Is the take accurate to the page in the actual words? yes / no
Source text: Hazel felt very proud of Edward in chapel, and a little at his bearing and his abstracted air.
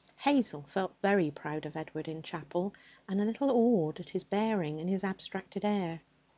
no